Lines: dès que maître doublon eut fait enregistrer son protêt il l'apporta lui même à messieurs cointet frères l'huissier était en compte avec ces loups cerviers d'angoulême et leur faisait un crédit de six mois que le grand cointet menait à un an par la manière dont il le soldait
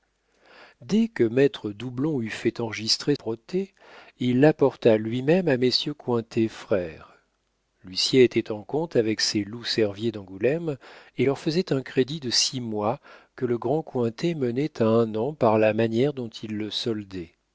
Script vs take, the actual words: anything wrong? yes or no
yes